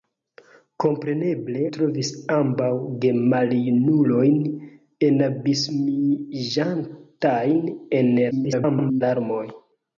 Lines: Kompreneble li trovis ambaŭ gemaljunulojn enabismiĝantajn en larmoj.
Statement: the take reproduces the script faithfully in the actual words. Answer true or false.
false